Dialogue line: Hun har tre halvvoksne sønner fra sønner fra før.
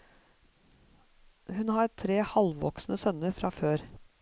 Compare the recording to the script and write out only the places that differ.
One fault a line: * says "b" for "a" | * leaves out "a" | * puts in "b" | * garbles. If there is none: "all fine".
* leaves out "sønner fra"